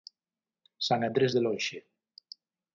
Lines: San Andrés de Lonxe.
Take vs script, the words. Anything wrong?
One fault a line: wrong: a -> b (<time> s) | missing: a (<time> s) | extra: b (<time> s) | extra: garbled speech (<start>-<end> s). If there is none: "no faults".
no faults